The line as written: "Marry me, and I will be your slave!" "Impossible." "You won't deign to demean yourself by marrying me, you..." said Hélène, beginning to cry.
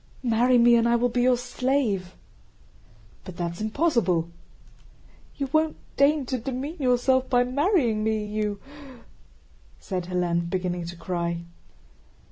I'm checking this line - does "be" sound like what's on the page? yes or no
yes